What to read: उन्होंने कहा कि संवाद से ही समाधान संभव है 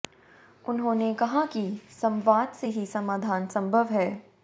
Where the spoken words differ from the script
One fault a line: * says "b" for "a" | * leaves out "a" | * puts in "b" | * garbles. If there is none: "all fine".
all fine